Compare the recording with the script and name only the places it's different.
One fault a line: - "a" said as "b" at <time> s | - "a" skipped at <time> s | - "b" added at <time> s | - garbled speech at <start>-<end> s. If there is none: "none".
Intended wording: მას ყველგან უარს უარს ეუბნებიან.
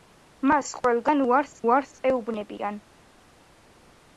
none